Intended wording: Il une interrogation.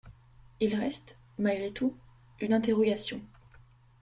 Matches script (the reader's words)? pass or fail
fail